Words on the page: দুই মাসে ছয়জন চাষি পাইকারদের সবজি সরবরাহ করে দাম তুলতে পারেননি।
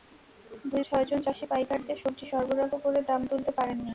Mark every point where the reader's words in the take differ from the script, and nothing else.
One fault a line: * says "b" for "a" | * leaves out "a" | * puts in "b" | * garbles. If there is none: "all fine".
* leaves out "মাসে"